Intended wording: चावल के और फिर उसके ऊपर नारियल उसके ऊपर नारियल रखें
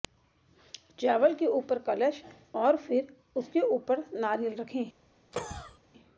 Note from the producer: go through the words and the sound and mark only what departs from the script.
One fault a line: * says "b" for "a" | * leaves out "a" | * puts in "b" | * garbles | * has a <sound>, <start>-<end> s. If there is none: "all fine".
* puts in "ऊपर कलश"
* leaves out "उसके ऊपर नारियल"
* has a cough, 5.3-5.8 s